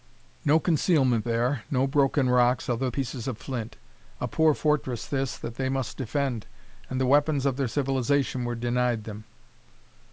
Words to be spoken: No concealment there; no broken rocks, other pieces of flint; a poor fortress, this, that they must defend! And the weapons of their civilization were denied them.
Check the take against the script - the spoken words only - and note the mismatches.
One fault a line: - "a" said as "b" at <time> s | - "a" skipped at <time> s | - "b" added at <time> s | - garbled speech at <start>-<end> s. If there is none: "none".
none